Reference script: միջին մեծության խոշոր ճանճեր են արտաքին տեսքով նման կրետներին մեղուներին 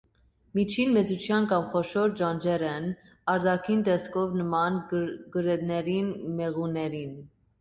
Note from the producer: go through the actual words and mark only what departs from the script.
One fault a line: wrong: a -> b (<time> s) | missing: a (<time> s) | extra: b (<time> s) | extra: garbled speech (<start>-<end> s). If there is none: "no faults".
extra: կամ (1.5 s)